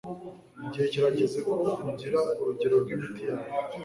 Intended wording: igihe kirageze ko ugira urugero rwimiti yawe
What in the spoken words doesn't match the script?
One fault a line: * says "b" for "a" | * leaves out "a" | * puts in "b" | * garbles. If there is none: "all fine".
all fine